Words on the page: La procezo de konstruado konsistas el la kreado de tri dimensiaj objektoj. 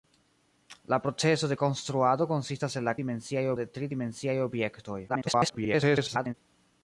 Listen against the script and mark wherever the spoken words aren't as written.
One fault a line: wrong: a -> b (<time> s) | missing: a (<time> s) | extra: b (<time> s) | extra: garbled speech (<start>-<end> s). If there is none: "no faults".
wrong: kreado -> dimensiaj (3.0 s)
extra: garbled speech (5.1-6.3 s)